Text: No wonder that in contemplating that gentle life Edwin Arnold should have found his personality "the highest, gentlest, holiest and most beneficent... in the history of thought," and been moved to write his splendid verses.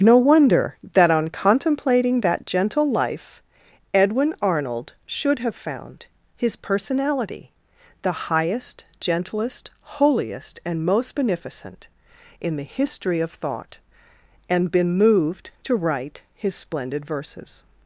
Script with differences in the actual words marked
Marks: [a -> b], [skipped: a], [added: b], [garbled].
No wonder that [in -> on] contemplating that gentle life Edwin Arnold should have found his personality "the highest, gentlest, holiest and most beneficent... in the history of thought," and been moved to write his splendid verses.